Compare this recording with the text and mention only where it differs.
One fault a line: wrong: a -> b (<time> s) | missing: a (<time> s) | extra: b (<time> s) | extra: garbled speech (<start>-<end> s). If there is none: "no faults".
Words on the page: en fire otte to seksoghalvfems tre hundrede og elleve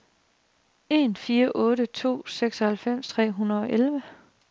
no faults